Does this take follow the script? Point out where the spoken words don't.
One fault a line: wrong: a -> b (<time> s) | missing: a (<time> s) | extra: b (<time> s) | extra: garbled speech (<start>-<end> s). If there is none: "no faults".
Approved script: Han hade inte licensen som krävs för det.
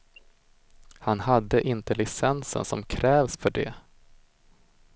no faults